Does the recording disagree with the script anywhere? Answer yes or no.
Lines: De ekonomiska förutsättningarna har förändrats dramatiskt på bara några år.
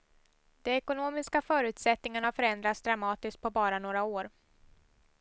no